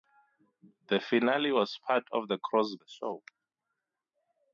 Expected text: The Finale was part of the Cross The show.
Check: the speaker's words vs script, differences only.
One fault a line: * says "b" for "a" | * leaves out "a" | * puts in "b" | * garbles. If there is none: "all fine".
all fine